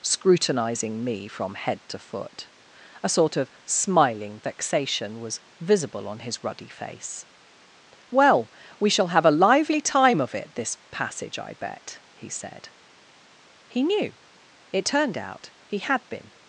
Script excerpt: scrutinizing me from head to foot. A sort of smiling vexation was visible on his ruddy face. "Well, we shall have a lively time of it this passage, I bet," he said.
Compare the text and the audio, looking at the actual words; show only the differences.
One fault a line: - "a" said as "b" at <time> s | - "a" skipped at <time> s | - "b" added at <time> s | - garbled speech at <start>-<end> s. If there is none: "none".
- "He knew It turned out he had been" added at 13.7 s